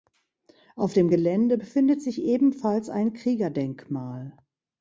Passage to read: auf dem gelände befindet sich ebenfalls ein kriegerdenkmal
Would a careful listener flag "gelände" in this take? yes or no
no